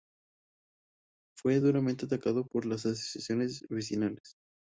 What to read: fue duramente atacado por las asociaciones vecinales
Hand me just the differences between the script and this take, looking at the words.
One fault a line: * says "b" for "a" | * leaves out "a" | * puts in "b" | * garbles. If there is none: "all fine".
all fine